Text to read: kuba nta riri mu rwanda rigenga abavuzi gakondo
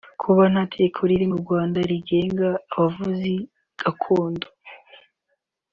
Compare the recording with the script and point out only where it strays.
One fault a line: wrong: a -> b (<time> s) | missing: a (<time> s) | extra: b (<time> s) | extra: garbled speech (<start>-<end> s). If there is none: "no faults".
extra: tegeko (0.7 s)